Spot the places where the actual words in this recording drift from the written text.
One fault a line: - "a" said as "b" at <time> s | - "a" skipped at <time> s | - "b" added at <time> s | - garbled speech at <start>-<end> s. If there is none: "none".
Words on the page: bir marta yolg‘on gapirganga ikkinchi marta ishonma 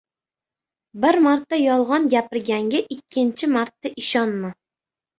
none